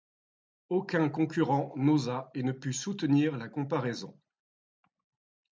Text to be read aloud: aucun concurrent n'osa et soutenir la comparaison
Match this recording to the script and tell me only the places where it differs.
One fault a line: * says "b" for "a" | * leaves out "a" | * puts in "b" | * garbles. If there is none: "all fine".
* puts in "ne put"